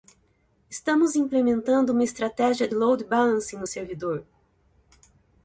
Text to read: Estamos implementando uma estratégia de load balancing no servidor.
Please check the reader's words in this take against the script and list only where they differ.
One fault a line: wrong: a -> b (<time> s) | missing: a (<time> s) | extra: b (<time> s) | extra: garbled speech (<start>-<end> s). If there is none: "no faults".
no faults